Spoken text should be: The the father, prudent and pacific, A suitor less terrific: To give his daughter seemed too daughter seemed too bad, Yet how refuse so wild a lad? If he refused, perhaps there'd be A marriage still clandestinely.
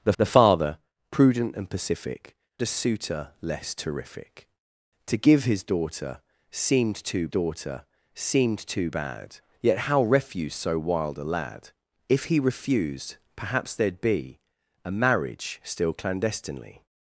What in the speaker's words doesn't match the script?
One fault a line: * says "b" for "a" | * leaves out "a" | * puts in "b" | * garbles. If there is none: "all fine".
all fine